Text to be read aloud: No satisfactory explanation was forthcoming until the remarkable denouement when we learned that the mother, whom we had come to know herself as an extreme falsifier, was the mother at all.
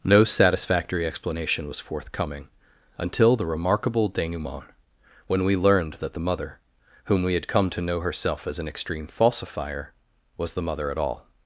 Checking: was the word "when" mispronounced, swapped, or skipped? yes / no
no